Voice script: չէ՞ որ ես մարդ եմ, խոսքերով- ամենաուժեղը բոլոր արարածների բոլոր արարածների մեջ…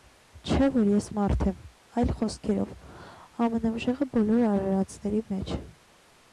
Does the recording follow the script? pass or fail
fail